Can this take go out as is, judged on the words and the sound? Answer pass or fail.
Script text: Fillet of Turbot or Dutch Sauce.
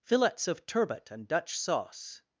fail